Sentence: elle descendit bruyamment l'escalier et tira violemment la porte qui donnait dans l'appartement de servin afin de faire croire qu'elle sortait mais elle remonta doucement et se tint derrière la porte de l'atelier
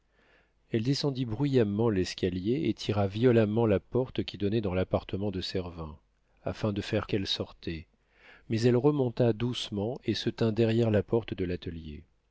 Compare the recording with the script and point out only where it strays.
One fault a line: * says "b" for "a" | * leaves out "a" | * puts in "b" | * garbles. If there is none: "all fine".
* leaves out "croire"